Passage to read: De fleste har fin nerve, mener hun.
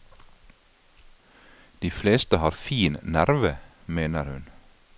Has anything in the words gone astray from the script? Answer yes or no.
no